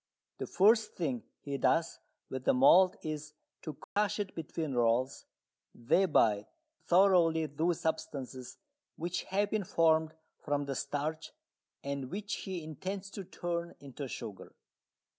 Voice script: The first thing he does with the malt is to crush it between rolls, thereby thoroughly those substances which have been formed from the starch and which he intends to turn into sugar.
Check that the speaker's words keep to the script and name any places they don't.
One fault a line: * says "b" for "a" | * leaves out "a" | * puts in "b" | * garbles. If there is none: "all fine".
all fine